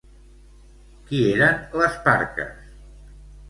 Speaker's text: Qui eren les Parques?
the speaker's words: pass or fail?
pass